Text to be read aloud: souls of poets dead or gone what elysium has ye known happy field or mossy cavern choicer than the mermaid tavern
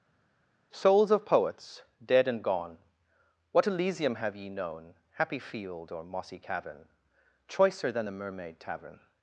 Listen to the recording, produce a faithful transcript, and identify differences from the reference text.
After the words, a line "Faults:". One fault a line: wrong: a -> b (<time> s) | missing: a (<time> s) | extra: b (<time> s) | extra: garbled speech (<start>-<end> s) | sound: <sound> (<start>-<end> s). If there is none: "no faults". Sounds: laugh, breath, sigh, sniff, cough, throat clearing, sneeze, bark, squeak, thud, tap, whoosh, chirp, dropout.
souls of poets dead and gone what elysium have ye known happy field or mossy cavern choicer than the mermaid tavern
Faults:
wrong: or -> and (2.3 s)
wrong: has -> have (4.1 s)